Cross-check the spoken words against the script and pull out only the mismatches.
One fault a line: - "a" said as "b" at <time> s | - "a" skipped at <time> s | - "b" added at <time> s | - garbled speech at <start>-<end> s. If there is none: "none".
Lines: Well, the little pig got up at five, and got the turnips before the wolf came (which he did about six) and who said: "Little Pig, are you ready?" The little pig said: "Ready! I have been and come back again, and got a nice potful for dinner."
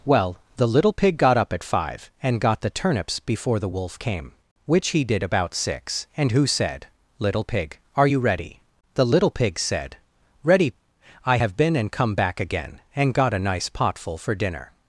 none